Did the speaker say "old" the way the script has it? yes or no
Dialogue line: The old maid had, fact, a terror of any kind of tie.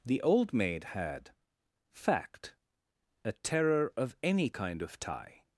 yes